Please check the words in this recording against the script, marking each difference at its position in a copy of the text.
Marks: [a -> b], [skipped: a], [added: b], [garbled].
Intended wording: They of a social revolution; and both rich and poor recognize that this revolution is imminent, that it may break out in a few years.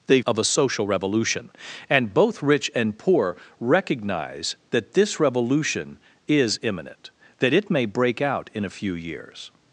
They of a social revolution; and both rich and poor recognize that this revolution is imminent, that it may break out in a few years.